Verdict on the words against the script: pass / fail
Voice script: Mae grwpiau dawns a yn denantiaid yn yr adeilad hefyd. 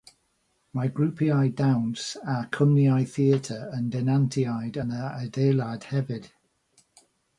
fail